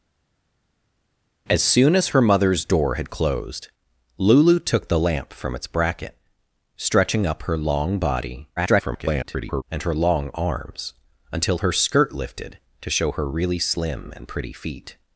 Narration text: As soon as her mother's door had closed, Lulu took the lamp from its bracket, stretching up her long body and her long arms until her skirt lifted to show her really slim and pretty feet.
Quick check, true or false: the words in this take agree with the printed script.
false